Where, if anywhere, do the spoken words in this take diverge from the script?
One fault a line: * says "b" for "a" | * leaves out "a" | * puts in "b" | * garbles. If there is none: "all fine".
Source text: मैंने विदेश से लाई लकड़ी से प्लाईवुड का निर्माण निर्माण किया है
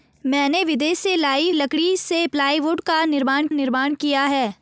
all fine